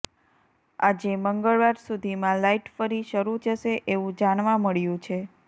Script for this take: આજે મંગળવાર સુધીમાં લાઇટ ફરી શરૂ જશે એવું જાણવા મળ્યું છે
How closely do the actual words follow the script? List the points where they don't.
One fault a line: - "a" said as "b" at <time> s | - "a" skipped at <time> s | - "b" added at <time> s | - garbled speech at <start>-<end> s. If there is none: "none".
none